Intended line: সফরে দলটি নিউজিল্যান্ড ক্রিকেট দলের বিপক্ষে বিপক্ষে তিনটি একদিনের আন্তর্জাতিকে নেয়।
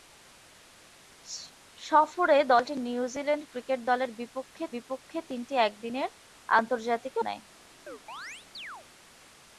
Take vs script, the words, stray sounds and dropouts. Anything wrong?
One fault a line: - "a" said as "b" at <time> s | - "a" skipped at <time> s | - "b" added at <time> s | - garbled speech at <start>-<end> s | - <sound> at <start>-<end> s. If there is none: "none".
- chirp at 7.9-8.9 s